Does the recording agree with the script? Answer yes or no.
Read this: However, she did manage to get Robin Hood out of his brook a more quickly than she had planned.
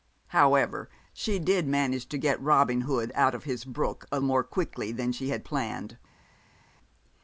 yes